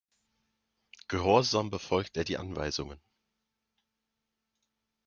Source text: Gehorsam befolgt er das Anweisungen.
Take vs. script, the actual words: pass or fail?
fail